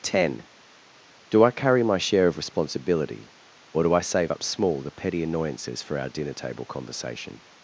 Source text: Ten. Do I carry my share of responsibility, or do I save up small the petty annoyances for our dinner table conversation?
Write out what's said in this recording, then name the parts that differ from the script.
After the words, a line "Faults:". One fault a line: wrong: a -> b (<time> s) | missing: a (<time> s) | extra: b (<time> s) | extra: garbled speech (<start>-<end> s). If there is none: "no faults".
Ten. Do I carry my share of responsibility, or do I save up small the petty annoyances for our dinner table conversation?
Faults:
no faults